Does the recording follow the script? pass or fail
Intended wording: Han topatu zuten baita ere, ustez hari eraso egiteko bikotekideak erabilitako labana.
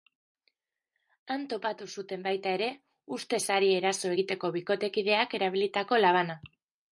pass